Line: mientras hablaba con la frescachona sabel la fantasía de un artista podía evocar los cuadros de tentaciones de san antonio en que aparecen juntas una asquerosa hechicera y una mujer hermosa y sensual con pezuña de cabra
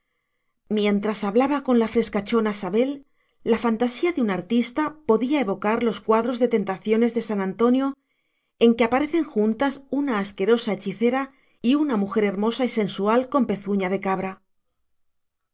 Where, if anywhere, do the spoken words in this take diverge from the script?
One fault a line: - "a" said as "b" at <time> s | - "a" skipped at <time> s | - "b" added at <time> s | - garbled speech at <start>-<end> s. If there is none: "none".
none